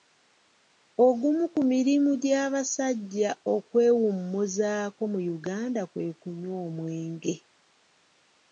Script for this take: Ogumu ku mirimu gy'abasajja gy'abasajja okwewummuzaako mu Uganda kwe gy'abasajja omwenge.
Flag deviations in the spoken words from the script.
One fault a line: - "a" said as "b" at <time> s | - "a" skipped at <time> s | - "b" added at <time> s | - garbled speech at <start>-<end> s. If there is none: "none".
- "gy'abasajja" skipped at 3.3 s
- "gy'abasajja" said as "kunywa" at 6.2 s